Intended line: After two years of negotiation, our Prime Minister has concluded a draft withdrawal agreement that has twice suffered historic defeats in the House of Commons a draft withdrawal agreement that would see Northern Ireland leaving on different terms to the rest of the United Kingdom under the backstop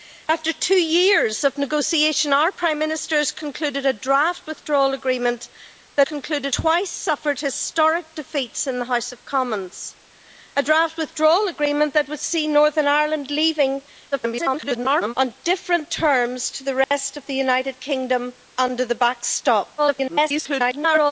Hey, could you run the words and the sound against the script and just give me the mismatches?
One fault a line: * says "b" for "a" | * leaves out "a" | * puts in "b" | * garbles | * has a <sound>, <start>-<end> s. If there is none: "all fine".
* says "concluded" for "has"
* garbles
* has a dropout, 16.8-16.9 s
* garbles